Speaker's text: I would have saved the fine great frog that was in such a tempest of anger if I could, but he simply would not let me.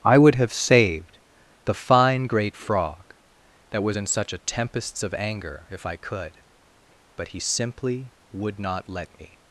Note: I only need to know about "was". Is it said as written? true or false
true